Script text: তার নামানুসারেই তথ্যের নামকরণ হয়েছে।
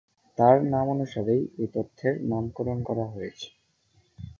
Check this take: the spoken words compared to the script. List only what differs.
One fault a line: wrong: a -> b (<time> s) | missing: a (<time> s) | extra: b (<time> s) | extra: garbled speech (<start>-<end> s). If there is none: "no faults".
extra: এই (1.6 s)
extra: করা (2.8 s)